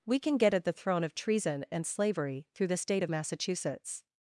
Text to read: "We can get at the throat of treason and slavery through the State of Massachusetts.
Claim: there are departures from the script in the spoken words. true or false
true